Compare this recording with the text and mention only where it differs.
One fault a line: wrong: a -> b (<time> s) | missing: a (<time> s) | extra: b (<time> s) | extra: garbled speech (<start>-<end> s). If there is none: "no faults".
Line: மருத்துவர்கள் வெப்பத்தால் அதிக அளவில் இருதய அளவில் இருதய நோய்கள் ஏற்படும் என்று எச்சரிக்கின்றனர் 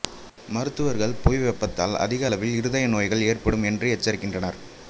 extra: புவி (1.2 s)
missing: அளவில் இருதய (2.9 s)